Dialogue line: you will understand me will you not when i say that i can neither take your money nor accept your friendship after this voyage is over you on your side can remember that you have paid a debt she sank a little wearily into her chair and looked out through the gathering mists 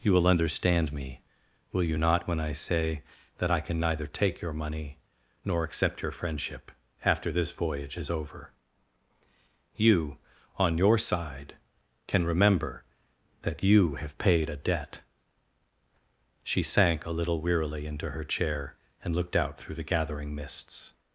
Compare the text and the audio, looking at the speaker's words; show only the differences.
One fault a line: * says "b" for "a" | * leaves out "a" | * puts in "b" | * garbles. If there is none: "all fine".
all fine